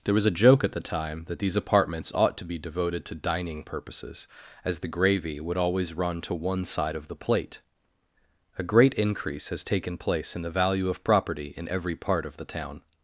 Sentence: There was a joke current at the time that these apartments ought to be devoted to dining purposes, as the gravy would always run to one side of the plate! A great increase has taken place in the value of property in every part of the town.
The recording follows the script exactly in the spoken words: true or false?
false